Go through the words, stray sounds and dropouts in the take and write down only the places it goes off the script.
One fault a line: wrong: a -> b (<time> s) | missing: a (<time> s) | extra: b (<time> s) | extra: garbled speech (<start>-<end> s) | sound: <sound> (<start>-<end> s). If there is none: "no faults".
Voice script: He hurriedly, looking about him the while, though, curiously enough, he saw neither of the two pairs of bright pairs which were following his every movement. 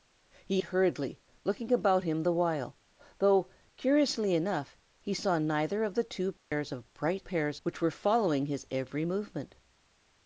sound: dropout (6.4-6.5 s)